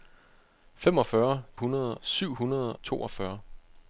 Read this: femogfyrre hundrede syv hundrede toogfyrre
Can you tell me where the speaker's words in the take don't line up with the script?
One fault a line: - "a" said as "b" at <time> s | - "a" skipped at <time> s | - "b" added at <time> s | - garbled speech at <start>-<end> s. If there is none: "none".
none